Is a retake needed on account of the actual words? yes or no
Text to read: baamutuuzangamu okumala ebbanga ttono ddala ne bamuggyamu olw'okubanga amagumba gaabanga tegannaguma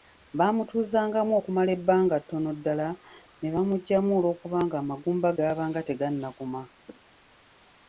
no